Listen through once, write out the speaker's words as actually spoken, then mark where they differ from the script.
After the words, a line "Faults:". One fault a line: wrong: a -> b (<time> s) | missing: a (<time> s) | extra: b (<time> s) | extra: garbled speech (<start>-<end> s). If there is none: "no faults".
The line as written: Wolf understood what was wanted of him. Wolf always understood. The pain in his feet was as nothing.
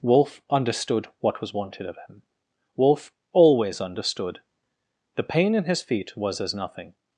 Wolf understood what was wanted of him. Wolf always understood. The pain in his feet was as nothing.
Faults:
no faults